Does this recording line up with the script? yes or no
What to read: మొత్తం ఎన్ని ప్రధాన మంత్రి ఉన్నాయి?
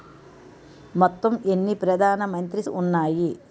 yes